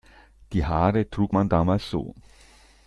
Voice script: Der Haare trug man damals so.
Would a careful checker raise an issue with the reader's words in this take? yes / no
yes